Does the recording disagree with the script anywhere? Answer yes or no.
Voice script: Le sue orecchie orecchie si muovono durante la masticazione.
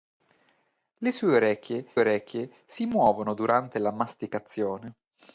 no